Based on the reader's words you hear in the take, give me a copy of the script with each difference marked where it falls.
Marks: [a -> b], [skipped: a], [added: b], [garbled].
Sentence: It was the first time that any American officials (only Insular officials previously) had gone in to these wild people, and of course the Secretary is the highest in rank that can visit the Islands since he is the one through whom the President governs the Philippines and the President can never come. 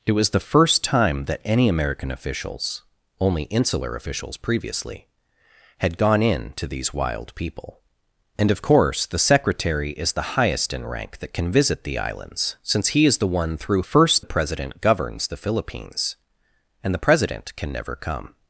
It was the first time that any American officials (only Insular officials previously) had gone in to these wild people, and of course the Secretary is the highest in rank that can visit the Islands since he is the one through [whom -> first] the President governs the Philippines and the President can never come.